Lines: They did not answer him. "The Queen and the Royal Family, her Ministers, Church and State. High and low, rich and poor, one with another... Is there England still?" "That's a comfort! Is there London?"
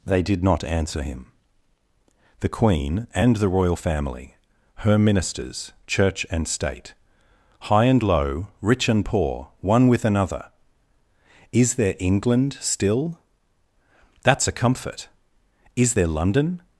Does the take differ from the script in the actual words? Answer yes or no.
no